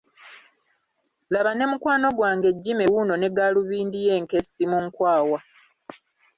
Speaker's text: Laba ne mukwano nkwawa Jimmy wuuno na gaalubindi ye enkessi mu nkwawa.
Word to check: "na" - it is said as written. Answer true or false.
false